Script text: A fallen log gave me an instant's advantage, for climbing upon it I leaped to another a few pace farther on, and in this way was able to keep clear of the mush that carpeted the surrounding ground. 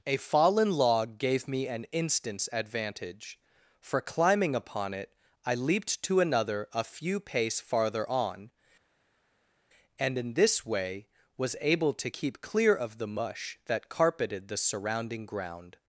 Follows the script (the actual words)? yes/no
yes